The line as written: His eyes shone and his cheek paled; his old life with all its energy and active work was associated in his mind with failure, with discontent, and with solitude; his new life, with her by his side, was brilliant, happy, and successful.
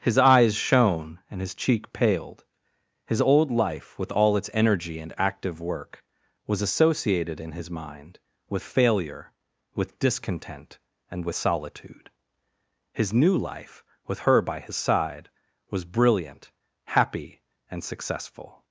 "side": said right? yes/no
yes